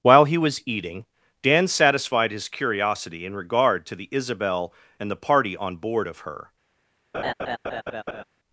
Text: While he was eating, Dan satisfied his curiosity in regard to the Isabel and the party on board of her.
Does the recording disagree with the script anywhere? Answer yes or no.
no